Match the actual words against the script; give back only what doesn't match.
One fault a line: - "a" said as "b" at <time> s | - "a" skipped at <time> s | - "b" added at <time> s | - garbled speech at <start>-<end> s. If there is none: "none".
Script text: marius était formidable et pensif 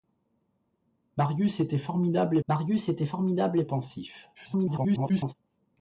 - "marius était formidable" added at 2.5 s
- garbled speech at 4.3-5.3 s